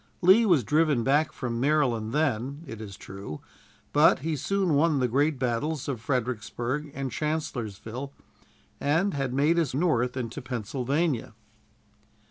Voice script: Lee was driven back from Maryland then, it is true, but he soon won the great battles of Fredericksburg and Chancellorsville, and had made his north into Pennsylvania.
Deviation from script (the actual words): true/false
false